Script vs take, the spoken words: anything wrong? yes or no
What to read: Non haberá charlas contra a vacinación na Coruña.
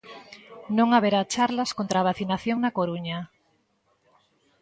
no